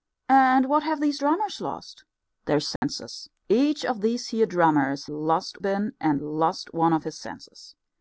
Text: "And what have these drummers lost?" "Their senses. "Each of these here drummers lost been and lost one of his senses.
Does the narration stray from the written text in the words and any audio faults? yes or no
yes